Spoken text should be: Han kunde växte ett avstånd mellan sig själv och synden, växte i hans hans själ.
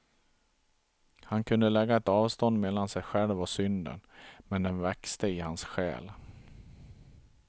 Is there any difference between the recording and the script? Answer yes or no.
yes